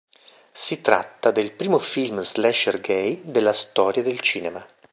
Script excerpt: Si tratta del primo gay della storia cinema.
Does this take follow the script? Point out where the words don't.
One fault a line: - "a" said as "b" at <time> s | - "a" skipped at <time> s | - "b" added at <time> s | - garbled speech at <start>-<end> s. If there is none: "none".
- "film slasher" added at 1.8 s
- "del" added at 4.0 s